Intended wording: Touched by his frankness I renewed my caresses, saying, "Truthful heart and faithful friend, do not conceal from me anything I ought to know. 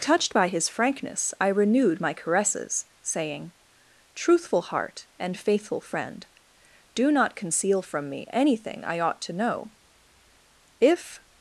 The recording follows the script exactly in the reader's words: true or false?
false